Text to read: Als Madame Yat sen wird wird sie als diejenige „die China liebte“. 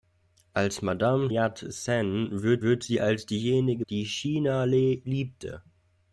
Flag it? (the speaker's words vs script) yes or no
no